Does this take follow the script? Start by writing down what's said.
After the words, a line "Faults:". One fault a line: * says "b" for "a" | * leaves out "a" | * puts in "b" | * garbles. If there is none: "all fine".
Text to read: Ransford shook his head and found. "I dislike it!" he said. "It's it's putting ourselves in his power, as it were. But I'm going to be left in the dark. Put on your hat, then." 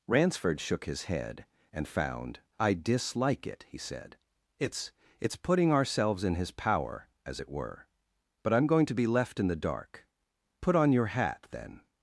Ransford shook his head and found. "I dislike it!" he said. "It's it's putting ourselves in his power, as it were. But I'm going to be left in the dark. Put on your hat, then."
Faults:
all fine